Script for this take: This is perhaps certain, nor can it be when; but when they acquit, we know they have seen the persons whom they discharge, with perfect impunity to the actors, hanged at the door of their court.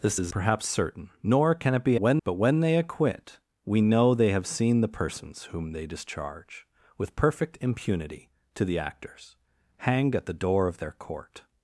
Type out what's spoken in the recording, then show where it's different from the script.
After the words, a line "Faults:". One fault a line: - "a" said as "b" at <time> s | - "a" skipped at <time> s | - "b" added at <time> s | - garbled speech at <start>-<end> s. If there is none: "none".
This is perhaps certain, nor can it be when; but when they acquit, we know they have seen the persons whom they discharge, with perfect impunity to the actors, hanged at the door of their court.
Faults:
none